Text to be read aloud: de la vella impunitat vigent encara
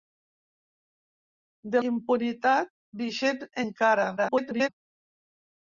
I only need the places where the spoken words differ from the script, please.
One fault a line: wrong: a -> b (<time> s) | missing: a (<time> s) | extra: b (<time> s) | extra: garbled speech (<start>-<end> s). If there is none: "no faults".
missing: la vella (1.8 s)
extra: garbled speech (4.2-4.7 s)